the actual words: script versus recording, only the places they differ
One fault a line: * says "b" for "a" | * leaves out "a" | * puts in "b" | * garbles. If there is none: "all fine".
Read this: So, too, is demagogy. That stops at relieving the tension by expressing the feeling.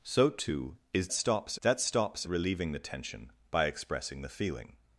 * says "stops" for "demagogy"
* leaves out "at"